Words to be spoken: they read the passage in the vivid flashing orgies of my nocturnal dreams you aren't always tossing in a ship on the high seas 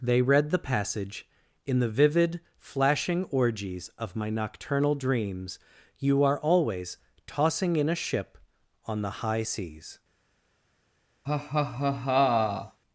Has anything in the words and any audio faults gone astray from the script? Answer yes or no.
yes